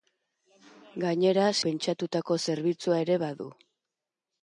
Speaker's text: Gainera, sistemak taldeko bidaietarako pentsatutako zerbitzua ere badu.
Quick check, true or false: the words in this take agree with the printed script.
false